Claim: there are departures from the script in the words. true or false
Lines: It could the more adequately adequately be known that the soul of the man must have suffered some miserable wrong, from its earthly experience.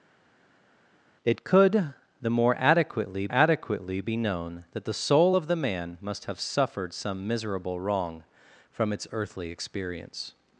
false